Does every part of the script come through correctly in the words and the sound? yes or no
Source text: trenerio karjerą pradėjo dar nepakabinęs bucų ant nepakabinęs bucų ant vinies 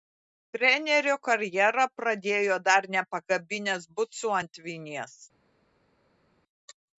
no